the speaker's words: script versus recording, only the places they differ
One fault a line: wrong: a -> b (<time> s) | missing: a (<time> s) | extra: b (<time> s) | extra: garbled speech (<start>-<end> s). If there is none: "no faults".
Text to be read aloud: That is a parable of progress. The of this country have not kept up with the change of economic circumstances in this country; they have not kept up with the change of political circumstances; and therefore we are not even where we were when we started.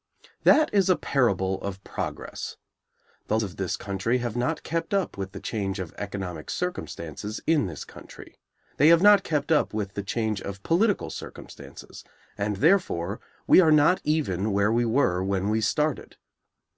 no faults